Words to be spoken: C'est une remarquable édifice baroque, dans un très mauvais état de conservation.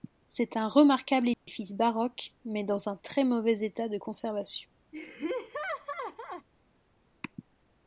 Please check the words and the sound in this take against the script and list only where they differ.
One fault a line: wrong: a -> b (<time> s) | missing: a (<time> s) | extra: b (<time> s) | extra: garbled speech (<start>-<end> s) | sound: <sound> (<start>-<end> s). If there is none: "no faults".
wrong: une -> un (0.6 s)
sound: dropout (1.3-1.5 s)
extra: mais (2.4 s)
sound: laugh (4.9-6.5 s)